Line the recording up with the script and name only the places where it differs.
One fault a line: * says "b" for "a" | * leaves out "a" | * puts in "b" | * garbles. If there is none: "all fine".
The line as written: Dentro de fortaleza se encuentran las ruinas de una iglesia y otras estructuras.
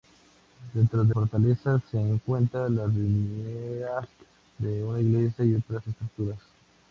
all fine